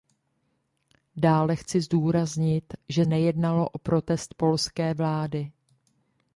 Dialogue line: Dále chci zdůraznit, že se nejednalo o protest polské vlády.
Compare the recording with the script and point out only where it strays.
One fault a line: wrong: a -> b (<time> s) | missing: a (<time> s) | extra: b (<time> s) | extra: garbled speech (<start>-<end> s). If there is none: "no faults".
missing: se (3.0 s)